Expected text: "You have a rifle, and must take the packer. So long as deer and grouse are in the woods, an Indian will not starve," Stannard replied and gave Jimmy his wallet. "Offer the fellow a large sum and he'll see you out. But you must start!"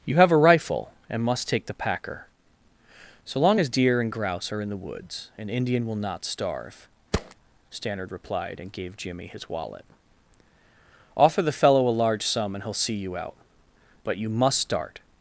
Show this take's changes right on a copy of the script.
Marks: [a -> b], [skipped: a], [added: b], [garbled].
"You have a rifle, and must take the packer. So long as deer and grouse are in the woods, an Indian will not starve," Stannard replied and gave Jimmy his wallet. "Offer the fellow a large sum and he'll see you out. But you must start!"